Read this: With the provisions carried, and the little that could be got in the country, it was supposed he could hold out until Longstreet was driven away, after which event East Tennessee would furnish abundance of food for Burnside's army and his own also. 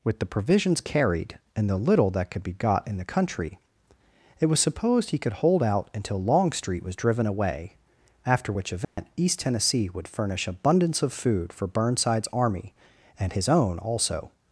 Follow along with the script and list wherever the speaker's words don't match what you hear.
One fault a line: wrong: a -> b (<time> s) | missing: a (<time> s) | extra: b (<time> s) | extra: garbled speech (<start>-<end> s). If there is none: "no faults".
no faults